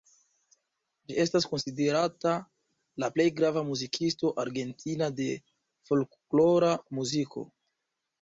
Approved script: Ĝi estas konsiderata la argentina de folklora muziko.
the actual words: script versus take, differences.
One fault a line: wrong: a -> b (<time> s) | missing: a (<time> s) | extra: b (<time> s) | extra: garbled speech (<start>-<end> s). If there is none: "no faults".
extra: plej grava muzikisto (3.1 s)